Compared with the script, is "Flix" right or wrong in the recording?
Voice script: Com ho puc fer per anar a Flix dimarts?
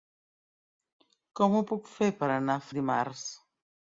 wrong